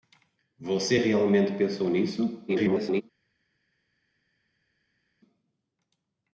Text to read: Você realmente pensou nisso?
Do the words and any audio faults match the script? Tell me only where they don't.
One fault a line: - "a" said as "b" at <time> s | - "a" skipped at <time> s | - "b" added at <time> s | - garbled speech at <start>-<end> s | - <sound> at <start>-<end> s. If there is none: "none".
- garbled speech at 2.5-3.0 s